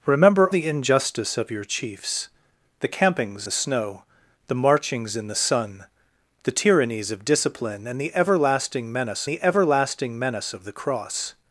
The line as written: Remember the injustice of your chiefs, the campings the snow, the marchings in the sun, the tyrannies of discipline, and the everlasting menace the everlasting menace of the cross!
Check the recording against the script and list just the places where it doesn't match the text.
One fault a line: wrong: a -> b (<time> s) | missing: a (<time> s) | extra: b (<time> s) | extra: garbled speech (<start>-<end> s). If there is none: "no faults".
no faults